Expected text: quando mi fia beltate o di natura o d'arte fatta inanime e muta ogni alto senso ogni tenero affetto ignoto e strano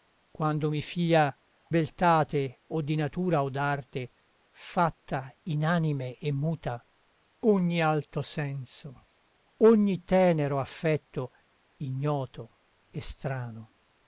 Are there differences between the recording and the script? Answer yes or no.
no